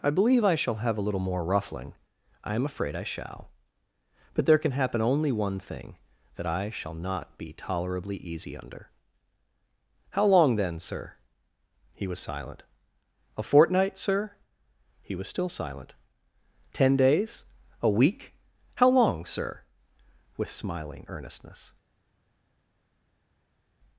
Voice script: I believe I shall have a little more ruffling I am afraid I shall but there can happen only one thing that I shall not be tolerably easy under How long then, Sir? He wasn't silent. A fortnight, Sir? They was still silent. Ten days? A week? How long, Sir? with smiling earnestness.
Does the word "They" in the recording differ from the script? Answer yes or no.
yes